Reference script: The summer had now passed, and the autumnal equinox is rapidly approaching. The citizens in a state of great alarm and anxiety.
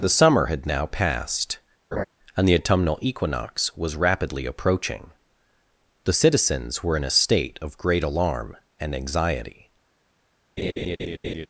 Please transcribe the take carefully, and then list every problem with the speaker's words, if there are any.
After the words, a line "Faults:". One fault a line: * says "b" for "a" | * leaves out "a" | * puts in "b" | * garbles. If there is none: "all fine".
The summer had now passed, and the autumnal equinox was rapidly approaching. The citizens were in a state of great alarm and anxiety.
Faults:
* says "was" for "is"
* puts in "were"